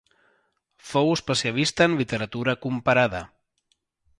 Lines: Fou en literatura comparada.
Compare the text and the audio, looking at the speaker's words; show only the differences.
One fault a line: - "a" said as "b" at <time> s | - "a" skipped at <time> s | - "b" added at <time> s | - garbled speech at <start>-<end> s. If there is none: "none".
- "especialista" added at 1.2 s